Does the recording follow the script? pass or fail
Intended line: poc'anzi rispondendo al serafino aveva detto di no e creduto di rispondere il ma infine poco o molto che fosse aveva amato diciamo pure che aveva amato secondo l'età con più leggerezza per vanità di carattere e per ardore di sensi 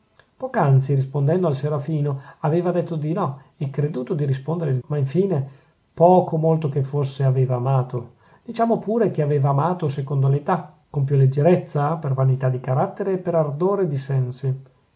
pass